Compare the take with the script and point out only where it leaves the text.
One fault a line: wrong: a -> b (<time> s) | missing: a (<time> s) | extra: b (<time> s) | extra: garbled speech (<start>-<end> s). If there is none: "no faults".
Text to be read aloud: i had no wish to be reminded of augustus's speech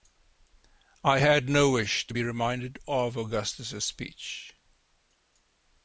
no faults